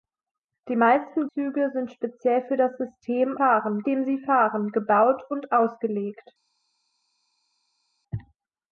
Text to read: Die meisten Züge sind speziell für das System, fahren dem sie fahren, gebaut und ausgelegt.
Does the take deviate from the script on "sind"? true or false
false